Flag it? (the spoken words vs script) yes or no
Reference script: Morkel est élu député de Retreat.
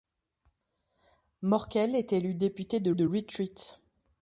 yes